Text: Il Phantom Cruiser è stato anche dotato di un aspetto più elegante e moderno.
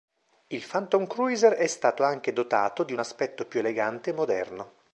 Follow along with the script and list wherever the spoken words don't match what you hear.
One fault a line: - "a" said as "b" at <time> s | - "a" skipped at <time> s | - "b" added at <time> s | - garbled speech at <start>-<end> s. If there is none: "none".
none